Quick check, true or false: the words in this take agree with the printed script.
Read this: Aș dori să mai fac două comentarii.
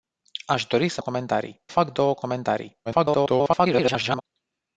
false